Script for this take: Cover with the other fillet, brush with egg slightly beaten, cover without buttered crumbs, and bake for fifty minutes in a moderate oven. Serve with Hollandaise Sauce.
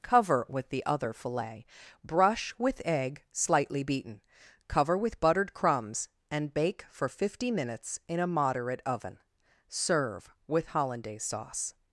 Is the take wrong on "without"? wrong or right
wrong